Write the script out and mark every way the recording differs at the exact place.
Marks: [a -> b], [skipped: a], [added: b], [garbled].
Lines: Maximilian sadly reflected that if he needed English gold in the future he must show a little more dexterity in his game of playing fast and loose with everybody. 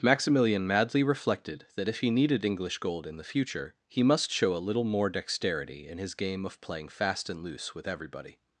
Maximilian [sadly -> madly] reflected that if he needed English gold in the future he must show a little more dexterity in his game of playing fast and loose with everybody.